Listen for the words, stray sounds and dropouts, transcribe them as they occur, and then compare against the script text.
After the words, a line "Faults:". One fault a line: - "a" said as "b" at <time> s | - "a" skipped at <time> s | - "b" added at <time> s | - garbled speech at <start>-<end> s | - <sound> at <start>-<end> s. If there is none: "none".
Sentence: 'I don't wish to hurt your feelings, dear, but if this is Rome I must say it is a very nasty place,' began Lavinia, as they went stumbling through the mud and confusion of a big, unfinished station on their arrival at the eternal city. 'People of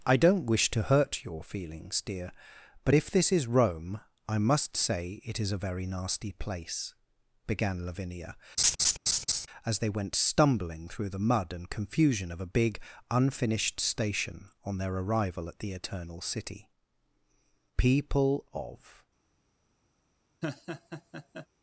'I don't wish to hurt your feelings, dear, but if this is Rome I must say it is a very nasty place,' began Lavinia, as they went stumbling through the mud and confusion of a big, unfinished station on their arrival at the eternal city. 'People of
Faults:
- laugh at 8.6-9.5 s
- laugh at 20.4-21.5 s